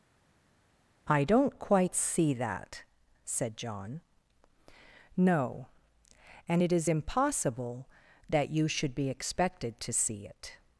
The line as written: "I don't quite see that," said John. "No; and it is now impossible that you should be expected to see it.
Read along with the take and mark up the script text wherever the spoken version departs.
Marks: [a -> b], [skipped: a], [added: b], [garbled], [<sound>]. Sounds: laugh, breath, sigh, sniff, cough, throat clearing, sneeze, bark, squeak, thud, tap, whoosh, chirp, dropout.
"I don't quite see that," said John. "No; and it is [skipped: now] impossible that you should be expected to see it.